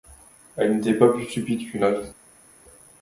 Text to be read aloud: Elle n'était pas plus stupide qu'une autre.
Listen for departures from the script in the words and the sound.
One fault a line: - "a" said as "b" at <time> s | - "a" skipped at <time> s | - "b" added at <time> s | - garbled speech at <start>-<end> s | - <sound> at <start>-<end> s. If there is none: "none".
none